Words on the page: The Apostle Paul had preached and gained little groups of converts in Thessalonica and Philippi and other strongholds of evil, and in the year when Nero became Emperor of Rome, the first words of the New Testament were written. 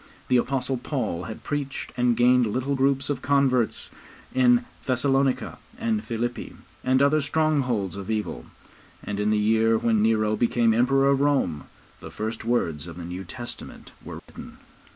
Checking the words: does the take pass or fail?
pass